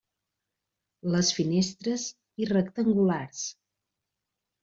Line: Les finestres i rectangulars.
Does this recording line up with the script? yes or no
yes